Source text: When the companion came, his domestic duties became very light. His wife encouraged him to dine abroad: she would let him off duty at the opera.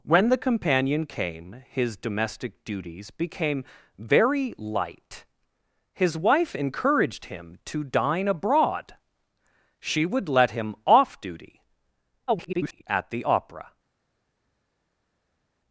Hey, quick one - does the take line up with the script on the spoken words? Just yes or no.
no